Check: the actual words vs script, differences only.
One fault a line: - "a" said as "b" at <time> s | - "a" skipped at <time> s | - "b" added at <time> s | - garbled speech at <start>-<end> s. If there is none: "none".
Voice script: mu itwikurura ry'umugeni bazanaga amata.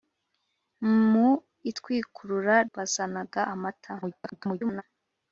- "ry'umugeni" skipped at 2.5 s
- garbled speech at 4.0-4.8 s